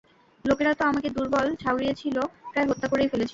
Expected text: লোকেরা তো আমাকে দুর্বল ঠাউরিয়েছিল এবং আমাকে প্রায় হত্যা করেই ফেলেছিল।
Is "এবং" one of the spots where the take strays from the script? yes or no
yes